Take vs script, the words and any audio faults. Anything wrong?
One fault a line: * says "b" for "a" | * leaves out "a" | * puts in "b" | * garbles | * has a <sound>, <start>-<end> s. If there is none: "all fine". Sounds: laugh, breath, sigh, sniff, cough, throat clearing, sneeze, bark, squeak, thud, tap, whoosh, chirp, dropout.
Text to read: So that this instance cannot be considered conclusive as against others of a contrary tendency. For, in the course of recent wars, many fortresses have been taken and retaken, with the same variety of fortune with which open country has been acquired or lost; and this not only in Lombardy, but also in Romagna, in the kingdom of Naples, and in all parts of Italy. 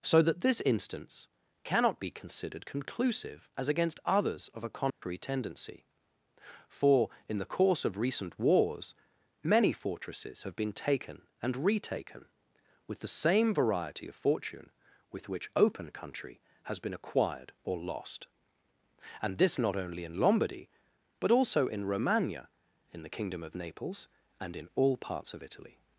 * has a dropout, 4.9-5.0 s